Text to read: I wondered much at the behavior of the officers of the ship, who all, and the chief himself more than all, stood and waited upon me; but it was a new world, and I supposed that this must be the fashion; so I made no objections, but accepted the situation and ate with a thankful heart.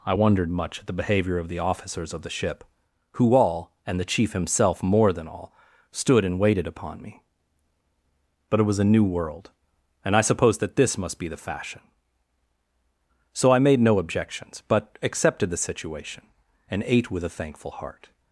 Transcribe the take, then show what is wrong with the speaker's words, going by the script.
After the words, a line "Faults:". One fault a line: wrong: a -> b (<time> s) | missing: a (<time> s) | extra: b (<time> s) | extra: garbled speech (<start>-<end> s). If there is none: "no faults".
I wondered much at the behavior of the officers of the ship, who all, and the chief himself more than all, stood and waited upon me; but it was a new world, and I supposed that this must be the fashion; so I made no objections, but accepted the situation and ate with a thankful heart.
Faults:
no faults